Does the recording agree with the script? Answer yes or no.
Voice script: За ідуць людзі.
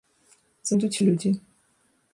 yes